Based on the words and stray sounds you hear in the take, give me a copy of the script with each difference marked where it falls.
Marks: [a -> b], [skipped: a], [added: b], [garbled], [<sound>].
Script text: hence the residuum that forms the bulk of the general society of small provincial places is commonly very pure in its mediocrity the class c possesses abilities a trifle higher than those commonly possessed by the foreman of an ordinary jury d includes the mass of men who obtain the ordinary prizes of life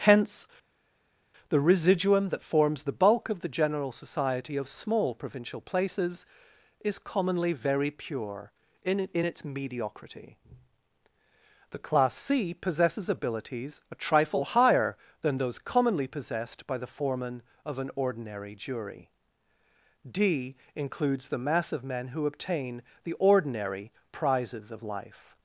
hence the residuum that forms the bulk of the general society of small provincial places is commonly very pure in [added: in] its mediocrity the class c possesses abilities a trifle higher than those commonly possessed by the foreman of an ordinary jury d includes the mass of men who obtain the ordinary prizes of life